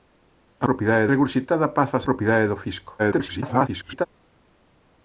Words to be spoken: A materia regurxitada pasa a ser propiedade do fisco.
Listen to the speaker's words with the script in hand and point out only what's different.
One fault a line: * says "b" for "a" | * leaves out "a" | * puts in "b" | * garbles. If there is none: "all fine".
* says "propiedade" for "materia"
* leaves out "ser"
* garbles